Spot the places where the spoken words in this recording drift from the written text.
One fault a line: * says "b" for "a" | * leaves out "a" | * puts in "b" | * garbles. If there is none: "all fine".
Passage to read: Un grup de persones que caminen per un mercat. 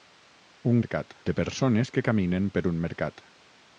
* says "mercat" for "grup"